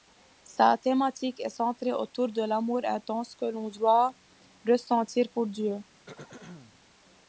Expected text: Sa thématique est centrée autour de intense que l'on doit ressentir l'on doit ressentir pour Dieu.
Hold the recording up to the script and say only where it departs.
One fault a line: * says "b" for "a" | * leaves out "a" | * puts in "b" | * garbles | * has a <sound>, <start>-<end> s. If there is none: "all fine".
* puts in "l'amour"
* leaves out "l'on doit ressentir"
* has a throat clearing, 6.1-6.8 s